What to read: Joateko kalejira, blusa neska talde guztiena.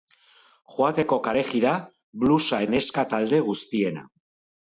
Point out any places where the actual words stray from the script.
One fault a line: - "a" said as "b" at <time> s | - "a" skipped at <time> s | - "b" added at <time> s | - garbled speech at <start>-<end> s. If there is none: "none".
none